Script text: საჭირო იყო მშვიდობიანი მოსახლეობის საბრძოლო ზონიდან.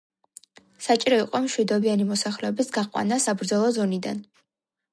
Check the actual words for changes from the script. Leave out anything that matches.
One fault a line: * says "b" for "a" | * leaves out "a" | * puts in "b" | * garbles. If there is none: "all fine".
* puts in "გაყვანა"